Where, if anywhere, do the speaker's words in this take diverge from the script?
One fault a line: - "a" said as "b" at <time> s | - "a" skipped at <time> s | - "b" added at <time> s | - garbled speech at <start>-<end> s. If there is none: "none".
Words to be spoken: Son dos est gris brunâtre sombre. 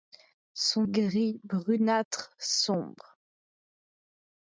- "dos est" skipped at 0.8 s